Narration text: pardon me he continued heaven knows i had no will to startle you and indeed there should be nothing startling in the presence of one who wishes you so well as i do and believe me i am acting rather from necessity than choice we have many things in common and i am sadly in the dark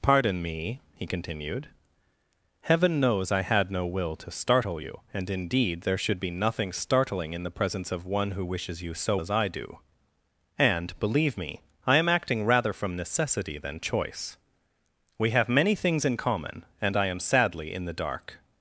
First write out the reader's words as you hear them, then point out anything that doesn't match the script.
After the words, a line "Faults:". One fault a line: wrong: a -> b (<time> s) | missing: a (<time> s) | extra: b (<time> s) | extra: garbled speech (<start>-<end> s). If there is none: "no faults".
pardon me he continued heaven knows i had no will to startle you and indeed there should be nothing startling in the presence of one who wishes you so as i do and believe me i am acting rather from necessity than choice we have many things in common and i am sadly in the dark
Faults:
missing: well (9.2 s)